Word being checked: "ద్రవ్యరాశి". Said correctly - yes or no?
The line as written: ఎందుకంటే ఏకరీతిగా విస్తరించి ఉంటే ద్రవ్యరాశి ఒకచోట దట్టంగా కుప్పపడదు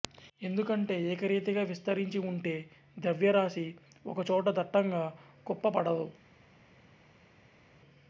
yes